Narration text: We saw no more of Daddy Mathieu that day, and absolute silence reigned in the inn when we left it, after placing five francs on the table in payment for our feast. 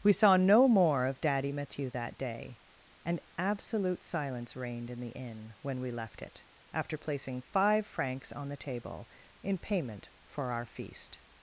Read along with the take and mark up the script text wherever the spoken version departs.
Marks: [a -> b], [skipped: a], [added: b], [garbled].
We saw no more of Daddy Mathieu that day, and absolute silence reigned in the inn when we left it, after placing five francs on the table in payment for our feast.